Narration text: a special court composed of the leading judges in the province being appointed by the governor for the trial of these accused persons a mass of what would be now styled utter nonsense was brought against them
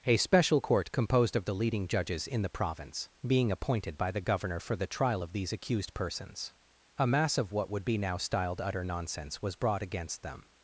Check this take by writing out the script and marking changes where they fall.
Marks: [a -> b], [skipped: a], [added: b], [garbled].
a special court composed of the leading judges in the province being appointed by the governor for the trial of these accused persons a mass of what would be now styled utter nonsense was brought against them